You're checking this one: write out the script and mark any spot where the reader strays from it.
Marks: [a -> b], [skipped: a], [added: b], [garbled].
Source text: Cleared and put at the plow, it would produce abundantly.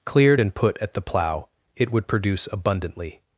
Cleared and put at the plow, it would produce abundantly.